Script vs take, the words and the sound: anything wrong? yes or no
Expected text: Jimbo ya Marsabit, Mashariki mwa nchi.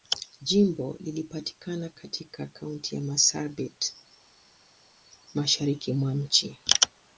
yes